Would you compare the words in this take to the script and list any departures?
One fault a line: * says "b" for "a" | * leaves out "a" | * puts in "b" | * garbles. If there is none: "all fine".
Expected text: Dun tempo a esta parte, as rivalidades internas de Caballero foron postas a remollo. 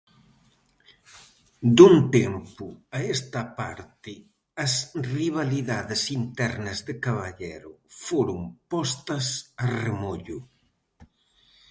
all fine